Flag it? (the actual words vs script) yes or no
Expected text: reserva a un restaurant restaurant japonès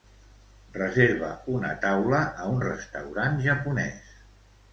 yes